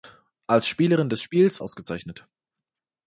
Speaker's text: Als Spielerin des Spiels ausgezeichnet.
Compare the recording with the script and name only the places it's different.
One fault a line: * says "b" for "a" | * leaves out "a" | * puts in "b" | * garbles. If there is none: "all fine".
all fine